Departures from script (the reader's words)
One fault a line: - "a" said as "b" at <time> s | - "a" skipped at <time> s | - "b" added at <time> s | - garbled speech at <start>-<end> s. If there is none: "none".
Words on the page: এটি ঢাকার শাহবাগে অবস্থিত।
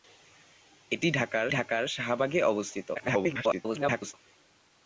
- "ঢাকার" added at 1.5 s
- garbled speech at 2.9-4.1 s